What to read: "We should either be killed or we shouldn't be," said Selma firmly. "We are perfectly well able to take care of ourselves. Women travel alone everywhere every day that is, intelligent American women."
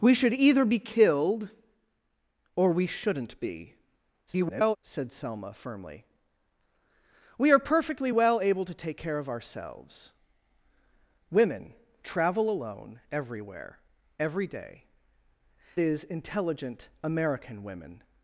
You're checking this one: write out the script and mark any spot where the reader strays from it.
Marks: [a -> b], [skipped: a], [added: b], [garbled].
"We should either be killed or we shouldn't be," [garbled] said Selma firmly. "We are perfectly well able to take care of ourselves. Women travel alone everywhere every day [skipped: that] is, intelligent American women."